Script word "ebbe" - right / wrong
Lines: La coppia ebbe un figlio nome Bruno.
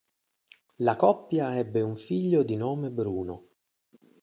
right